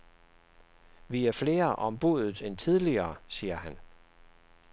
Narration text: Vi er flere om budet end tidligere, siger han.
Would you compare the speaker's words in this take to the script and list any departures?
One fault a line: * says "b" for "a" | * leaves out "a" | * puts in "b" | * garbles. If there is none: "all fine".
all fine